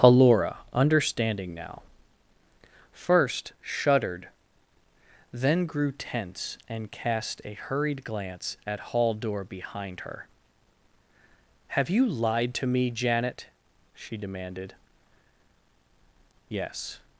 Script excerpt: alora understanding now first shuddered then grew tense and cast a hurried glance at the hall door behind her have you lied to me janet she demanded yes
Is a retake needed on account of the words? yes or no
yes